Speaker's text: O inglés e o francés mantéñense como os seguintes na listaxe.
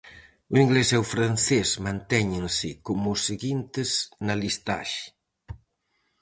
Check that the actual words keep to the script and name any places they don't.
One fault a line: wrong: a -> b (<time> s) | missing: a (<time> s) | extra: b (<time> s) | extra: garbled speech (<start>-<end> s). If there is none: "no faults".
no faults